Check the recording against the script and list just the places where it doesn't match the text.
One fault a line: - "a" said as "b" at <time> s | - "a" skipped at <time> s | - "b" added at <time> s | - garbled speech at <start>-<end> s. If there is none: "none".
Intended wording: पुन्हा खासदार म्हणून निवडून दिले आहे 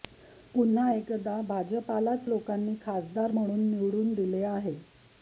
- "एकदा भाजपलाच लोकांनी" added at 0.9 s